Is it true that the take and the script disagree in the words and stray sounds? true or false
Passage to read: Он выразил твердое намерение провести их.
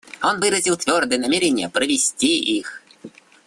false